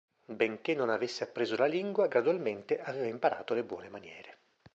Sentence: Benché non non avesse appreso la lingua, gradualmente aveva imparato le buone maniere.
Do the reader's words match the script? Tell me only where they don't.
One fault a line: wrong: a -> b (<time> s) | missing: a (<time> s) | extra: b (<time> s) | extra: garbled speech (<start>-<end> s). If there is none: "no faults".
missing: non (0.9 s)